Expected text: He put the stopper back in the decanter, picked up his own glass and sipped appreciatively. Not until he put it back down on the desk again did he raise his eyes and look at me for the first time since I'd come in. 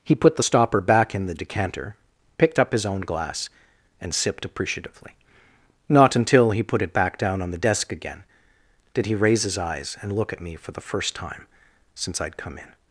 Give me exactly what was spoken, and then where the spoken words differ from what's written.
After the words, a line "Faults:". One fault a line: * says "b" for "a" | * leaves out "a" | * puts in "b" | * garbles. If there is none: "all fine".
He put the stopper back in the decanter, picked up his own glass and sipped appreciatively. Not until he put it back down on the desk again did he raise his eyes and look at me for the first time since I'd come in.
Faults:
all fine